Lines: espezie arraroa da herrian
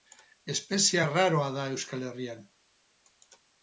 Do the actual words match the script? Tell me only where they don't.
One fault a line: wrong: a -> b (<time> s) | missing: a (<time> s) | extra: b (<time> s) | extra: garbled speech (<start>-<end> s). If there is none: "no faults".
extra: euskal (1.7 s)